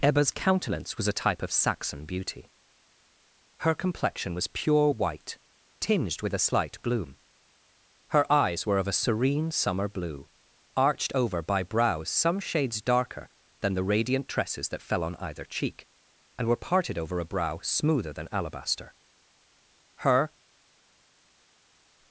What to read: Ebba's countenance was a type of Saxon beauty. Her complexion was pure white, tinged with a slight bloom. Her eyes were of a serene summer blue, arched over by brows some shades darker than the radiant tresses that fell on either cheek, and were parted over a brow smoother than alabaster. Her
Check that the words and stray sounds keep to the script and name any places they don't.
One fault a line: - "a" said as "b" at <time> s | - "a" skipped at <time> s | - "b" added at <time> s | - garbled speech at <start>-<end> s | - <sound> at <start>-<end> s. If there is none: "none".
none